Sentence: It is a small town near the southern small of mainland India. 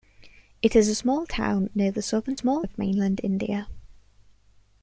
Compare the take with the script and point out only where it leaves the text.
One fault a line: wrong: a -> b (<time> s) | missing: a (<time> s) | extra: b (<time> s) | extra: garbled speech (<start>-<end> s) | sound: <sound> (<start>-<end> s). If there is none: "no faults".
no faults